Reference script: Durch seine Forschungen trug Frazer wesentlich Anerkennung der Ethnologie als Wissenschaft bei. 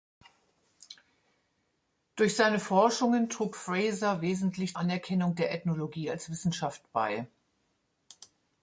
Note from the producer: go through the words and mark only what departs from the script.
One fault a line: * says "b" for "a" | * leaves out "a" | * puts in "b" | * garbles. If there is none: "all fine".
all fine